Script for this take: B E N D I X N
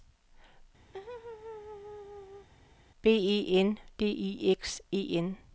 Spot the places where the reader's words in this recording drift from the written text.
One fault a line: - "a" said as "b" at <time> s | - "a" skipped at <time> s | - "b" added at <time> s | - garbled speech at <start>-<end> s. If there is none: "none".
- "E" added at 4.9 s